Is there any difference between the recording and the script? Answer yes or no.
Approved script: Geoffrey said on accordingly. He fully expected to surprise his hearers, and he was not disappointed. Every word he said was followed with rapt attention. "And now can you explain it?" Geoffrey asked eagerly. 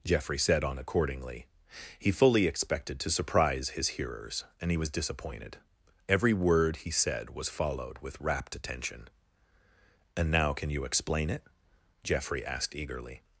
yes